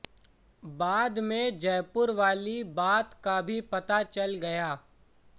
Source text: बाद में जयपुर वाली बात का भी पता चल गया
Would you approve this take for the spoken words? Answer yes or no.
yes